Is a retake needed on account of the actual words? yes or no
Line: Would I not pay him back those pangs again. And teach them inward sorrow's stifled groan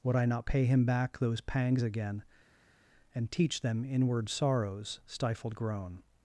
no